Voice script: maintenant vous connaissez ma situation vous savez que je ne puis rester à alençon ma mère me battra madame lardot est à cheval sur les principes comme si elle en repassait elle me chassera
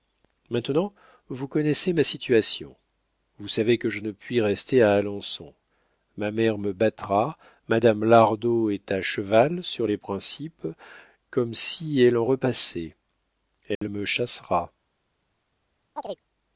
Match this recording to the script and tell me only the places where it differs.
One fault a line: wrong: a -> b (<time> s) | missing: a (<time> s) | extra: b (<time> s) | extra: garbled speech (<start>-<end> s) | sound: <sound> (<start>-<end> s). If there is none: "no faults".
sound: dropout (13.8-13.8 s)
sound: chirp (16.0-16.2 s)